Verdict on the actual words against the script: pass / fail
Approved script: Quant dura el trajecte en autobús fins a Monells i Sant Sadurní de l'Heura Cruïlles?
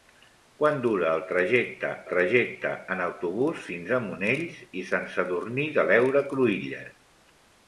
fail